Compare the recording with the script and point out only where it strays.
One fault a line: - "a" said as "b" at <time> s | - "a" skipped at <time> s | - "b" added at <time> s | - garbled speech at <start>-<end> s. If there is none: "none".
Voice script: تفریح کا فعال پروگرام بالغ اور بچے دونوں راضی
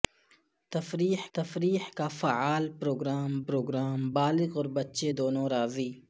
- "تفریح" added at 1.3 s
- "پروگرام" added at 3.5 s